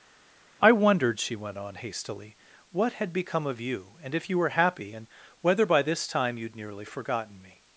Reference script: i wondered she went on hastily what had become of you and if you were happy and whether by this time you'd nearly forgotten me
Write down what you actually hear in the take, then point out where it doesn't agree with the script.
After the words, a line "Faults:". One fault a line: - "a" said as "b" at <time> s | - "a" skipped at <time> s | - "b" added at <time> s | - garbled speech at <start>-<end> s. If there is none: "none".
i wondered she went on hastily what had become of you and if you were happy and whether by this time you'd nearly forgotten me
Faults:
none